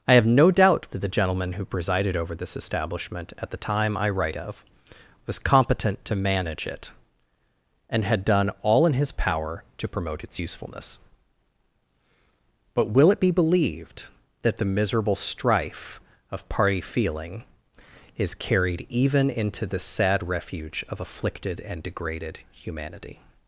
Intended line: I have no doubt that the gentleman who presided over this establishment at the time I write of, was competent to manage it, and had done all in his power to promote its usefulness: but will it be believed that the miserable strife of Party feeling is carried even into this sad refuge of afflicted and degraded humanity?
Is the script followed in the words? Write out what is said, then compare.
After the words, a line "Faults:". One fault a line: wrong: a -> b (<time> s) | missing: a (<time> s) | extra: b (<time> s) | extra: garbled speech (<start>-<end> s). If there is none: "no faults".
I have no doubt that the gentleman who presided over this establishment at the time I write of, was competent to manage it, and had done all in his power to promote its usefulness: but will it be believed that the miserable strife of Party feeling is carried even into the sad refuge of afflicted and degraded humanity?
Faults:
wrong: this -> the (19.7 s)